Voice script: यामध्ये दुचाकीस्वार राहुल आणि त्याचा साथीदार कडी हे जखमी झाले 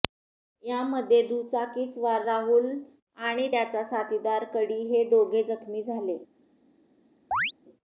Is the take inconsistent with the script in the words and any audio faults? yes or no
yes